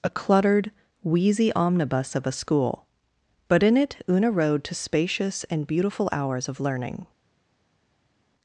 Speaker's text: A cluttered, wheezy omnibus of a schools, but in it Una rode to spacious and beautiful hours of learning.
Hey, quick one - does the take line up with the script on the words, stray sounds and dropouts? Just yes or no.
no